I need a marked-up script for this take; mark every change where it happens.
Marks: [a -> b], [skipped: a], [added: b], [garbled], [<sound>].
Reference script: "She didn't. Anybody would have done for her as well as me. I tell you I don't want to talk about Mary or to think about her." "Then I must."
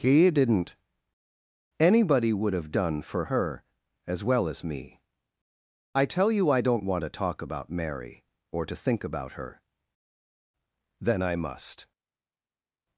["She -> He] didn't. Anybody would have done for her as well as me. I tell you I don't want to talk about Mary or to think about her." "Then I must."